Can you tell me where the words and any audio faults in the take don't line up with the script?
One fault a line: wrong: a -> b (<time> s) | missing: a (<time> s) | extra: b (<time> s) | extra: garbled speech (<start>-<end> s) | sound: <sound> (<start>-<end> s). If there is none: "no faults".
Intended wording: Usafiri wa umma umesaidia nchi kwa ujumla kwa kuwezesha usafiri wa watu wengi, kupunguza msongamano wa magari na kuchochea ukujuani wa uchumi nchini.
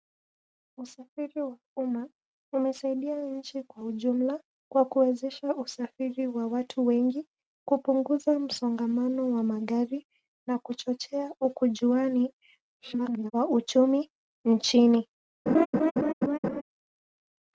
extra: garbled speech (12.8-13.3 s)
sound: laugh (15.5-16.6 s)